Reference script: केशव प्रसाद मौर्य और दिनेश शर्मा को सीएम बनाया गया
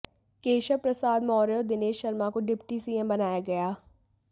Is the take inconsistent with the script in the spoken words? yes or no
yes